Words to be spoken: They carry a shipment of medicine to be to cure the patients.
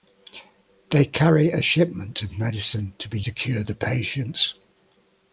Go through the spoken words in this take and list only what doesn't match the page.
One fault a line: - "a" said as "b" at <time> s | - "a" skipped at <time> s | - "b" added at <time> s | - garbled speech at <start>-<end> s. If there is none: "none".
none